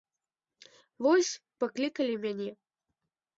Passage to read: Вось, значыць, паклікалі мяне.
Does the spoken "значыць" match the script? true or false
false